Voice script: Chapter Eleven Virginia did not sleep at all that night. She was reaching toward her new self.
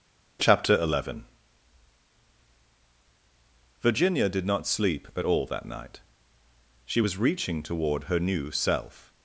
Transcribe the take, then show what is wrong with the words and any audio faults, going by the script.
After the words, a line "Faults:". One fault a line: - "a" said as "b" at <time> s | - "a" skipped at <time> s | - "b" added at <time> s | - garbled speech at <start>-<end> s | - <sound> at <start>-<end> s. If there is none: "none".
Chapter Eleven Virginia did not sleep at all that night. She was reaching toward her new self.
Faults:
none